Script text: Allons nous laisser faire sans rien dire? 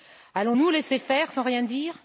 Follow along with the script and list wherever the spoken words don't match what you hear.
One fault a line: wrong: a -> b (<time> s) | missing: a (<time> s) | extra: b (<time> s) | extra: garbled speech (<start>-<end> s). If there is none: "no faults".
no faults